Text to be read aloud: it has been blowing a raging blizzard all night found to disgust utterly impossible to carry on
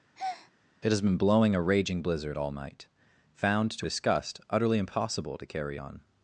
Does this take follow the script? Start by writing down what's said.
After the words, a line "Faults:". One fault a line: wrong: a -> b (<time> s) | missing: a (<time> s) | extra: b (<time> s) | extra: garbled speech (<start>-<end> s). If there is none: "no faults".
it has been blowing a raging blizzard all night found to disgust utterly impossible to carry on
Faults:
no faults